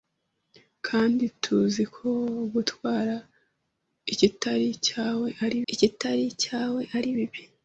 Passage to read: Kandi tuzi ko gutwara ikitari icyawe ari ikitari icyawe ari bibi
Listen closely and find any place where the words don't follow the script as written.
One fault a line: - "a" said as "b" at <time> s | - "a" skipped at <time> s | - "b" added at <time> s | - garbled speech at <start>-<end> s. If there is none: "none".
none